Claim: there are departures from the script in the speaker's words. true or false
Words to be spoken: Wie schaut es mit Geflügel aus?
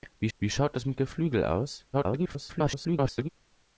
true